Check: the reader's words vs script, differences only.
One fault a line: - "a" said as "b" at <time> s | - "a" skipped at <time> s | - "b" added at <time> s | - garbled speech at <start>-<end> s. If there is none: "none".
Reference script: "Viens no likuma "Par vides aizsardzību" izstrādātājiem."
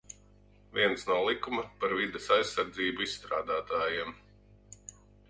none